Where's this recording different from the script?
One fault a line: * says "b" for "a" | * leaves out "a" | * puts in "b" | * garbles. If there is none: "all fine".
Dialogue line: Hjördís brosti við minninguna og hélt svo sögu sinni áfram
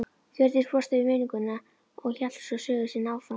all fine